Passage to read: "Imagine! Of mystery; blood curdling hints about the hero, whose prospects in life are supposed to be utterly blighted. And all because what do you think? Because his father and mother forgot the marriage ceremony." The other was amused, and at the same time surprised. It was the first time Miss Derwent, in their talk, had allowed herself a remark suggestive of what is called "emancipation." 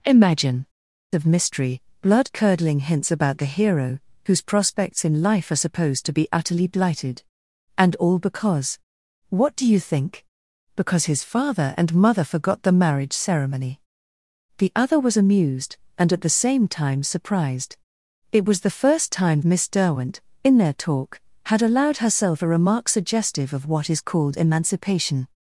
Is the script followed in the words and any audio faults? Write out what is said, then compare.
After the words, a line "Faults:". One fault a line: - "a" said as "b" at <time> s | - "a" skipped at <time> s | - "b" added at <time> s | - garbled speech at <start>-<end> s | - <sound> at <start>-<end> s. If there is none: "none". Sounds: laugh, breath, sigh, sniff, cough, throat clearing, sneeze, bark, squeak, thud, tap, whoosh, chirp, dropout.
"Imagine! Of mystery; blood curdling hints about the hero, whose prospects in life are supposed to be utterly blighted. And all because what do you think? Because his father and mother forgot the marriage ceremony." The other was amused, and at the same time surprised. It was the first time Miss Derwent, in their talk, had allowed herself a remark suggestive of what is called "emancipation."
Faults:
none